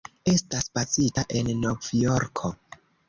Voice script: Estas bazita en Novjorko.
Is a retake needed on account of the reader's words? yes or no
no